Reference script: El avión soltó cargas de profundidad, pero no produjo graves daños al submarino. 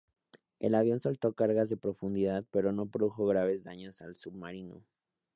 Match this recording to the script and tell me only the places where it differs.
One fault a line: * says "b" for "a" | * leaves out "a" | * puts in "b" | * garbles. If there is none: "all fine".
all fine